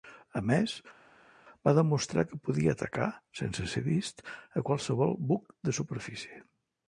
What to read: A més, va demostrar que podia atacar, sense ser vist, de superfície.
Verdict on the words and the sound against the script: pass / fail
fail